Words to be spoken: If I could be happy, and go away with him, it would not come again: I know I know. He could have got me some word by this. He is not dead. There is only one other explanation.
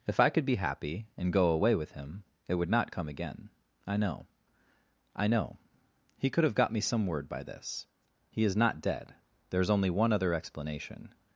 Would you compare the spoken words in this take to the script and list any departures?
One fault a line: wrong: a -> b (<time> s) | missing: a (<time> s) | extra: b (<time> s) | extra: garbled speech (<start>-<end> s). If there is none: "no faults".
no faults